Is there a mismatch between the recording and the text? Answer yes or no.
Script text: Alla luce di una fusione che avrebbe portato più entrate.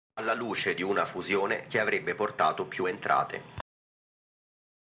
no